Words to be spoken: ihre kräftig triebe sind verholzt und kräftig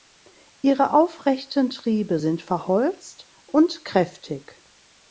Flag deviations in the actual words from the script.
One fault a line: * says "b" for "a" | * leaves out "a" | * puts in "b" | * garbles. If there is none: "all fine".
* says "aufrechten" for "kräftig"